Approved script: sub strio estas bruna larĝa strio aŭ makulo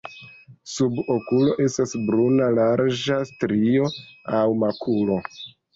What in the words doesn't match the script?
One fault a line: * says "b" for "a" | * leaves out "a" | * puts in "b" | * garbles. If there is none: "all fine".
* says "okulo" for "strio"